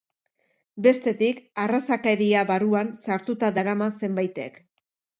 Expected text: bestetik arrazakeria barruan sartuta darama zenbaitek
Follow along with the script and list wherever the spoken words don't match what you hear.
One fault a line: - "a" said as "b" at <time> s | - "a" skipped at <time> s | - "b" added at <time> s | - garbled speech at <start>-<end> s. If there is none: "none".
none